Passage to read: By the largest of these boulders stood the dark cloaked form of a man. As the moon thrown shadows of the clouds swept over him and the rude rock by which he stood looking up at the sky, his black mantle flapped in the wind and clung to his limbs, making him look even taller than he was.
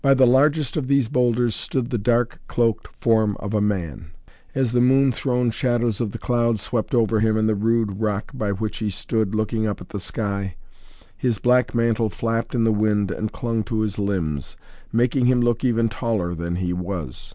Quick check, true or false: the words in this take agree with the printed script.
true